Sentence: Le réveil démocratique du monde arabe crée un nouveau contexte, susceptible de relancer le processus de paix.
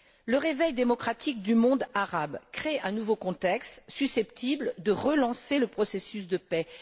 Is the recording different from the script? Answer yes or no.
no